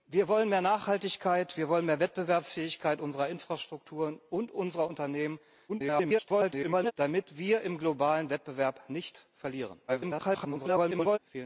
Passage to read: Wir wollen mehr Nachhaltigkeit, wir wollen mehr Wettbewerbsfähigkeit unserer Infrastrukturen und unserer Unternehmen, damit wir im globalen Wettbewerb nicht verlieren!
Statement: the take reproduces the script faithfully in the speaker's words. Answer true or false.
false